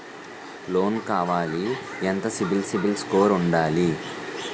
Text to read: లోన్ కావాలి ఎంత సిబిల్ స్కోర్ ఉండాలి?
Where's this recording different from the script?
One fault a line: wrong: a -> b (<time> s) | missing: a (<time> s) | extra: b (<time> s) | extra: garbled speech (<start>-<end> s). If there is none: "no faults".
extra: సిబిల్ (2.6 s)